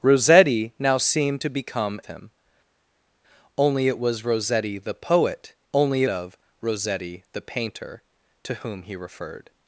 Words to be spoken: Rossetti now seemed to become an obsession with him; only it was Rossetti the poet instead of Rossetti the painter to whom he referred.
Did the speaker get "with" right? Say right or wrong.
wrong